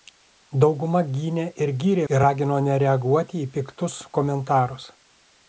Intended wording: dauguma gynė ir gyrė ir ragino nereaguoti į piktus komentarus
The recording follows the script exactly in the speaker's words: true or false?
true